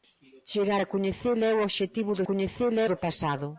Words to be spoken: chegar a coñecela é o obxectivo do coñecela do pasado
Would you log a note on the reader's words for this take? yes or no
no